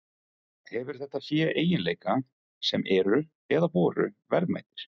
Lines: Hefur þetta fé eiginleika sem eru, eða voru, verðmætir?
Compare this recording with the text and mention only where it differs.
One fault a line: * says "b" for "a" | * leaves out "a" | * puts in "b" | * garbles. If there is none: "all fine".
all fine